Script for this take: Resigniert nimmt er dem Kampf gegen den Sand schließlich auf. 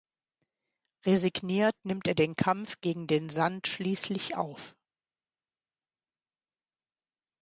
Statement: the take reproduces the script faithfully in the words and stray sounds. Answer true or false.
false